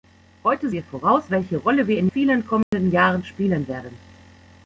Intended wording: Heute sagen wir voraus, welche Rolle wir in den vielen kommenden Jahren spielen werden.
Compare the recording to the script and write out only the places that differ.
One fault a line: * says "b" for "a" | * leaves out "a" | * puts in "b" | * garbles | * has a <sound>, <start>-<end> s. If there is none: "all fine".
* leaves out "sagen"
* leaves out "den"
* has a dropout, 2.6-2.7 s